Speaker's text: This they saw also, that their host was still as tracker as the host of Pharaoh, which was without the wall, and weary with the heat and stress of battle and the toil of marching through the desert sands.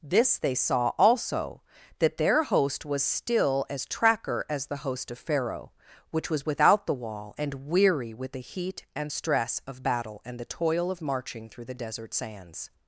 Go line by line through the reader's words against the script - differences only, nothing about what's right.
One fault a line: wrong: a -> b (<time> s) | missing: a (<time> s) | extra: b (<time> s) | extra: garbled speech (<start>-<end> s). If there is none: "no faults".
no faults